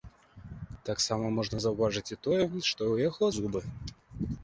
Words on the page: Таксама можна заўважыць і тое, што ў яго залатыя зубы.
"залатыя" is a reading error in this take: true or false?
true